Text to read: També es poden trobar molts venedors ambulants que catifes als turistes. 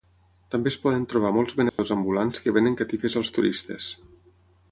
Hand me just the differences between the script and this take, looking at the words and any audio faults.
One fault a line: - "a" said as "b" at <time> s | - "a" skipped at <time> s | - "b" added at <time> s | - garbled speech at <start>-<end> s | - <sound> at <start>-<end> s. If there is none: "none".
- dropout at 1.7-1.8 s
- "venen" added at 2.6 s